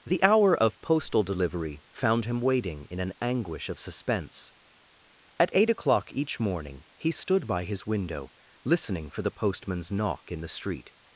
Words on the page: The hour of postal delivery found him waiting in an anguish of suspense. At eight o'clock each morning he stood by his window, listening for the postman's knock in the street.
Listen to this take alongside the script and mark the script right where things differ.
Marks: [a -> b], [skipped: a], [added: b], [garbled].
The hour of postal delivery found him waiting in an anguish of suspense. At eight o'clock each morning he stood by his window, listening for the postman's knock in the street.